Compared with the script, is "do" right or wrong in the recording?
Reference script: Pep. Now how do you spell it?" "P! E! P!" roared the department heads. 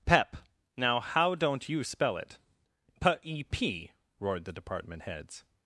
wrong